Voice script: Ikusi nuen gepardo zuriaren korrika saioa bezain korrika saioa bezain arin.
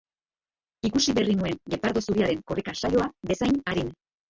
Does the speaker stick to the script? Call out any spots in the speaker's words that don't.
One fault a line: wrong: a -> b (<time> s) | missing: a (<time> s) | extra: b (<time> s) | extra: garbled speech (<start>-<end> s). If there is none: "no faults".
extra: berri (1.2 s)
missing: korrika saioa bezain (3.6 s)